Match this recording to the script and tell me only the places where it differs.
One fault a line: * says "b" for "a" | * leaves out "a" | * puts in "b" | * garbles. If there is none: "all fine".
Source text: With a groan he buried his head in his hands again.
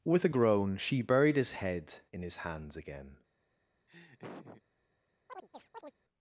* says "she" for "he"